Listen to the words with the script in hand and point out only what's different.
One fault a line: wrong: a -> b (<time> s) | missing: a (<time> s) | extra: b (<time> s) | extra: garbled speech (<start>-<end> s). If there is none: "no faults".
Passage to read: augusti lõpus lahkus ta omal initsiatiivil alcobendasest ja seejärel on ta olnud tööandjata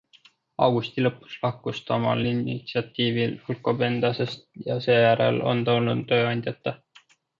no faults